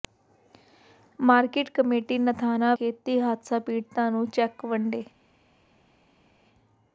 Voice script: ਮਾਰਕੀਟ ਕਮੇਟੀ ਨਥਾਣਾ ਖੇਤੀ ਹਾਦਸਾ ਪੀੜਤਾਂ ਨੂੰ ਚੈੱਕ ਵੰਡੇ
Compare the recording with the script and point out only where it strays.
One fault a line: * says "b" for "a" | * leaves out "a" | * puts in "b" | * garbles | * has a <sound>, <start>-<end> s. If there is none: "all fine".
all fine